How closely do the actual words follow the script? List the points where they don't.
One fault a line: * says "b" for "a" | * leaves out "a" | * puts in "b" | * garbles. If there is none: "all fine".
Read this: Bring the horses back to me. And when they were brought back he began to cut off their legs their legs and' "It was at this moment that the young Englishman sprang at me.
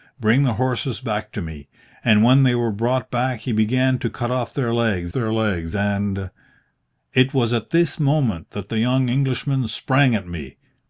all fine